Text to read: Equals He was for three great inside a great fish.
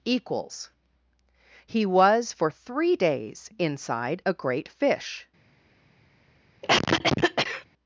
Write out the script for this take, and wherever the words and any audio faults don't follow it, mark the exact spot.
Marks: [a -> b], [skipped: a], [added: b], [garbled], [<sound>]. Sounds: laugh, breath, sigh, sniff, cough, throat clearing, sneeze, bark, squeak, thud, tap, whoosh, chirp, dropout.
Equals He was for three [great -> days] inside a great fish. [cough]